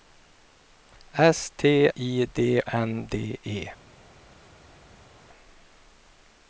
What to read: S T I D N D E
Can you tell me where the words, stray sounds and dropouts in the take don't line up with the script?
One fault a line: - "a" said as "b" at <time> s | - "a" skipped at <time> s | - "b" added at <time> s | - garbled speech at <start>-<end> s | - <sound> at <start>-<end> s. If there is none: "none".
none